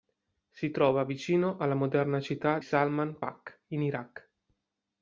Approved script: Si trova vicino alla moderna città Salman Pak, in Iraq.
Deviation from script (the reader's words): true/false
false